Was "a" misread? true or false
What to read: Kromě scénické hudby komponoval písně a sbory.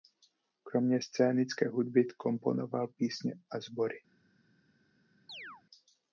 false